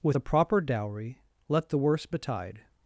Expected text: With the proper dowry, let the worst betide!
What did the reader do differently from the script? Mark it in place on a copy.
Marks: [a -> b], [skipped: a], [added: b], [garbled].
With [the -> a] proper dowry, let the worst betide!